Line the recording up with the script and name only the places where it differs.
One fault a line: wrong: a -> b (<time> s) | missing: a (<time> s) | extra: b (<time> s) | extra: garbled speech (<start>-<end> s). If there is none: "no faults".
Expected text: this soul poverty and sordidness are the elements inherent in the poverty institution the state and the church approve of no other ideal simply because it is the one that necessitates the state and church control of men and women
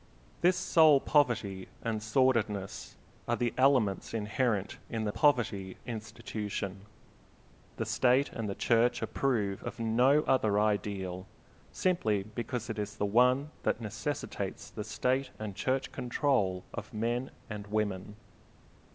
no faults